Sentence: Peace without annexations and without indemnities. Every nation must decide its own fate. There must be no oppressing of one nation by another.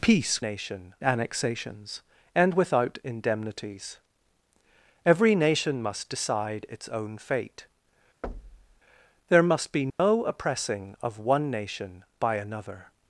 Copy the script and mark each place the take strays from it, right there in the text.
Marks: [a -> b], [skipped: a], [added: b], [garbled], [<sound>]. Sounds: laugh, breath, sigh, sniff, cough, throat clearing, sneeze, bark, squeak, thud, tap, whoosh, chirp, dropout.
Peace [without -> nation] annexations and without indemnities. Every nation must decide its own fate. [thud] There must be no [dropout] oppressing of one nation by another.